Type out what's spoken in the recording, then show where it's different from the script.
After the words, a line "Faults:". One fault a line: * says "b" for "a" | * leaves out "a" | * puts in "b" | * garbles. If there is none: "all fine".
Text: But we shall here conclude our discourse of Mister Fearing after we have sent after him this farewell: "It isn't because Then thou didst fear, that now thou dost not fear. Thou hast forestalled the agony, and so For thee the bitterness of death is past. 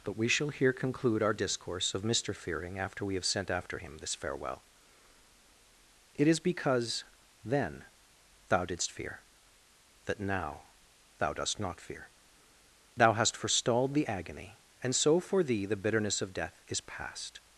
But we shall here conclude our discourse of Mister Fearing after we have sent after him this farewell: "It is because Then thou didst fear, that now thou dost not fear. Thou hast forestalled the agony, and so For thee the bitterness of death is past.
Faults:
* says "is" for "isn't"